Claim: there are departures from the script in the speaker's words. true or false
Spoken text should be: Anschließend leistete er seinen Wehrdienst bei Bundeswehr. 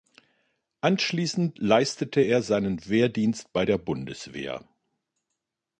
true